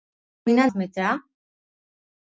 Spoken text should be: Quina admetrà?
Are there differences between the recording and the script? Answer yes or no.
no